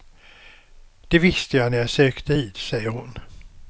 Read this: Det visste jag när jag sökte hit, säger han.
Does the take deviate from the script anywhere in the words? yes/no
yes